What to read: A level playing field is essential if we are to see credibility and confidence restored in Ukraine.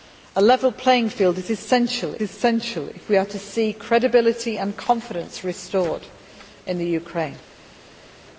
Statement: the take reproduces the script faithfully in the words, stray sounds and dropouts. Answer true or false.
false